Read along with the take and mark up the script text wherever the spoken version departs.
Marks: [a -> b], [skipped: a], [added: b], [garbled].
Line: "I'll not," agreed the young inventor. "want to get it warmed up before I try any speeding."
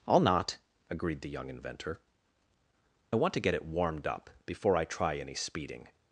"I'll not," agreed the young inventor. "want to get it warmed up before I try any speeding."